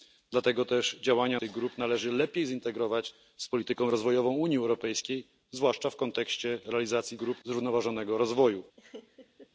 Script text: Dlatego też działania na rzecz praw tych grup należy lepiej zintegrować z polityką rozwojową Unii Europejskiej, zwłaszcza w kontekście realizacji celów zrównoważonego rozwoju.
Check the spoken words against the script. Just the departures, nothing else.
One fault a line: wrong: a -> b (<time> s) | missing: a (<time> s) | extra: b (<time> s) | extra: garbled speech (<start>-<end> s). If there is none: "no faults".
missing: na rzecz praw (1.4 s)
wrong: celów -> grup (7.2 s)